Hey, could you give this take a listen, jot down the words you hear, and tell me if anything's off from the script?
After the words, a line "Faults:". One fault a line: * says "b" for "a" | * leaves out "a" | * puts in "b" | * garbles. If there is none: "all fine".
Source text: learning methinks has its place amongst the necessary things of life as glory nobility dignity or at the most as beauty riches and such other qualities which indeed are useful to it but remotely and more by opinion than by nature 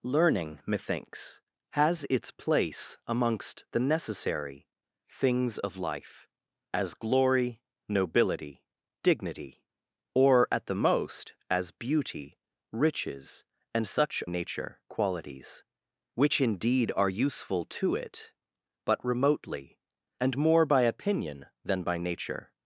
learning methinks has its place amongst the necessary things of life as glory nobility dignity or at the most as beauty riches and such nature qualities which indeed are useful to it but remotely and more by opinion than by nature
Faults:
* says "nature" for "other"